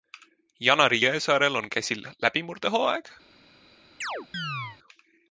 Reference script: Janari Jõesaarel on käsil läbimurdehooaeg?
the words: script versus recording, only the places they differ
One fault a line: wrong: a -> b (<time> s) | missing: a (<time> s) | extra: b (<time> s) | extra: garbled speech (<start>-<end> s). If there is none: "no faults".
no faults